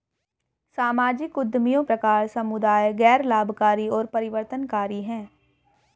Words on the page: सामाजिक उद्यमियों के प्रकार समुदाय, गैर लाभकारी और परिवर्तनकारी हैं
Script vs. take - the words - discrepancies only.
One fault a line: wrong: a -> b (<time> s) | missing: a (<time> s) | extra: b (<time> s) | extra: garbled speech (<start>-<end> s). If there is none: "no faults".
missing: के (1.8 s)